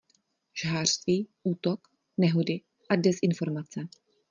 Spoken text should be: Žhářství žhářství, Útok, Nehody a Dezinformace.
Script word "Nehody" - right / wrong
right